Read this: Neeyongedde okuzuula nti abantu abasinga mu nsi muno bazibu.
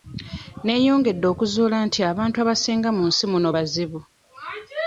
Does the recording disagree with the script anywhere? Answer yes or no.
no